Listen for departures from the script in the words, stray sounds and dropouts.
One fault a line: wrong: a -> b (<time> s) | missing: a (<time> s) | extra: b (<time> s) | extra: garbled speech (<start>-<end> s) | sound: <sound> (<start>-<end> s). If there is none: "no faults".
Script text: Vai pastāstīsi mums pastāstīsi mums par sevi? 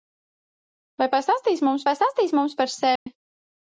sound: dropout (3.0-3.1 s)